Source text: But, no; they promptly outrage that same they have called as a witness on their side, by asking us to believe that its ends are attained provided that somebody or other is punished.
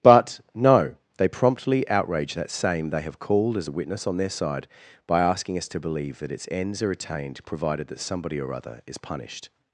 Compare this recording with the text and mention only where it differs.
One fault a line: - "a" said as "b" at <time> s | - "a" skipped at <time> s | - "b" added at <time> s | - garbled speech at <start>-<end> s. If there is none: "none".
none